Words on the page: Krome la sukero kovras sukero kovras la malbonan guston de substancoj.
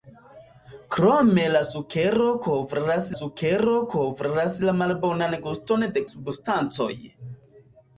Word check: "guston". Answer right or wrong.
right